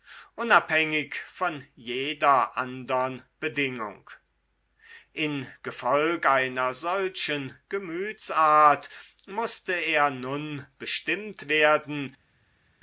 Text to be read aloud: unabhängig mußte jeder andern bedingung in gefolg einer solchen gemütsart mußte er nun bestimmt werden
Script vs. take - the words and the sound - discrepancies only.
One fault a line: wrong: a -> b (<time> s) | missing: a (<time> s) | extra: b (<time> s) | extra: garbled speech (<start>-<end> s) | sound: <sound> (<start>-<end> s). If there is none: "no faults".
wrong: mußte -> von (1.3 s)